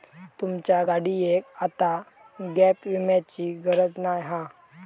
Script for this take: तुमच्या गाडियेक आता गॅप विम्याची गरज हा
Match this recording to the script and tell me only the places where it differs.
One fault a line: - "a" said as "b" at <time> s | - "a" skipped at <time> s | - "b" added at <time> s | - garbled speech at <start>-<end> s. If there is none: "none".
- "नाय" added at 4.0 s